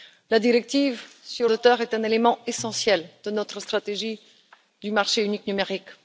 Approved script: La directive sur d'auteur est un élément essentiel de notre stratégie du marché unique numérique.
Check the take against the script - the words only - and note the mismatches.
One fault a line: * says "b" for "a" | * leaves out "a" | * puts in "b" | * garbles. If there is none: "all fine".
all fine